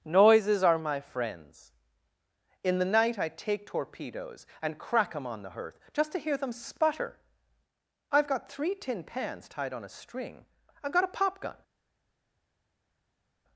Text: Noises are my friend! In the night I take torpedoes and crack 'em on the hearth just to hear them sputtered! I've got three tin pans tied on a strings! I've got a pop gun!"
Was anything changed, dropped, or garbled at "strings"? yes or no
yes